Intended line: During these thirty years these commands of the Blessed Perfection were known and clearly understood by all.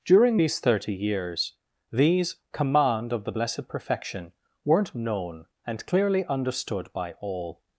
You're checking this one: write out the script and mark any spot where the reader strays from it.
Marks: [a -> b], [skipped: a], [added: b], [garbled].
During these thirty years these [commands -> command] of the Blessed Perfection [were -> weren't] known and clearly understood by all.